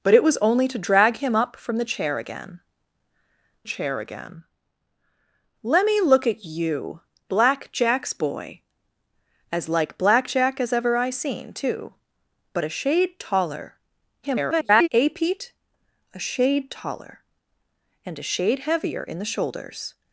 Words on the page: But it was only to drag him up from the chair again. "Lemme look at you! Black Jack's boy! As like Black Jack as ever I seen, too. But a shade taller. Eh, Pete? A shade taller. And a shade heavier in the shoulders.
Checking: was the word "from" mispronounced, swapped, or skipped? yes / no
no